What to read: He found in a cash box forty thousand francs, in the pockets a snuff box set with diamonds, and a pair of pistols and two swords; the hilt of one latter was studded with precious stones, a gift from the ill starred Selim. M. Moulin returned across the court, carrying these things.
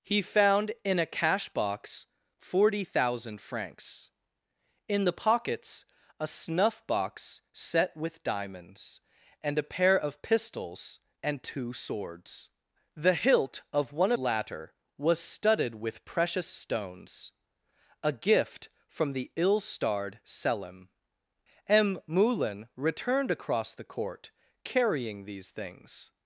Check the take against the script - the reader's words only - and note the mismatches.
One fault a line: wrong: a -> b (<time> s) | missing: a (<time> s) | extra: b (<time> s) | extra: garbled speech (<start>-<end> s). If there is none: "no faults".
no faults